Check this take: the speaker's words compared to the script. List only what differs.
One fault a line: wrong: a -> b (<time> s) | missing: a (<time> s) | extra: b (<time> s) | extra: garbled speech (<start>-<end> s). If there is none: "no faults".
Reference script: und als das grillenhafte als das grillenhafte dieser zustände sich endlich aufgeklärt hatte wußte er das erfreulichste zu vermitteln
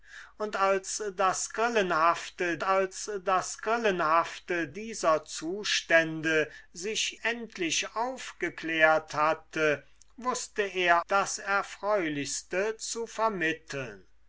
no faults